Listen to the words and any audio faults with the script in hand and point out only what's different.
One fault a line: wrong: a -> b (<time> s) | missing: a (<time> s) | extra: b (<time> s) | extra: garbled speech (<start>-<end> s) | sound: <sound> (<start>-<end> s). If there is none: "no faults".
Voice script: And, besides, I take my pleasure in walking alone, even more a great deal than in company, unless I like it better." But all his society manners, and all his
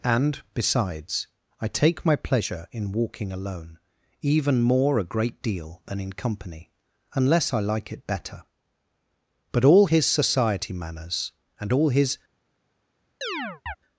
sound: chirp (13.2-13.8 s)